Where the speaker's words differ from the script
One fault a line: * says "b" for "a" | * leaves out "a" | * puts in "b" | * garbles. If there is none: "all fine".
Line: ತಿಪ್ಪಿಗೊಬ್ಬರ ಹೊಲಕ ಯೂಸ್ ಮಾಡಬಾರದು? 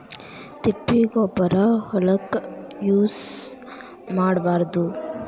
all fine